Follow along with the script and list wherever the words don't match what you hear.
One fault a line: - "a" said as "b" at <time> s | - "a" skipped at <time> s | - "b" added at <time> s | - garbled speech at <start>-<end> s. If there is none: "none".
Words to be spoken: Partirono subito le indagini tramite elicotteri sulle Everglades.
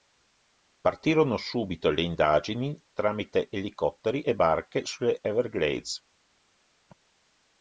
- "e barche" added at 4.2 s